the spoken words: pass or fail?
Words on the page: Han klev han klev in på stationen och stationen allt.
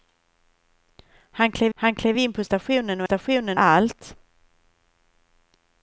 pass